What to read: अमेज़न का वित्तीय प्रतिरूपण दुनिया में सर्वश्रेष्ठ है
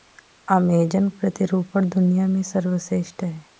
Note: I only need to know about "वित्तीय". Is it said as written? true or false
false